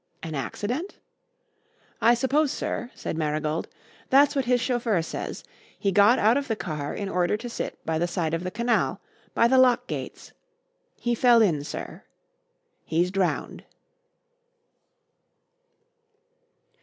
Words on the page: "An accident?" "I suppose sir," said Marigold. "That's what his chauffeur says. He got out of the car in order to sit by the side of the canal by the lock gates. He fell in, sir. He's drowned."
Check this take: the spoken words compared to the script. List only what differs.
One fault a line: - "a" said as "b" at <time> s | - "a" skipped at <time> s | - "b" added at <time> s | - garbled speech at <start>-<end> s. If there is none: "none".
none